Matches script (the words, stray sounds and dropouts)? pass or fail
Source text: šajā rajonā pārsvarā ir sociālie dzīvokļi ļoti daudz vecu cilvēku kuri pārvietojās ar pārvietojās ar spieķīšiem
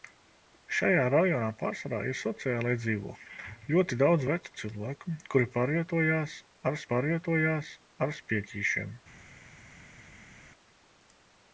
pass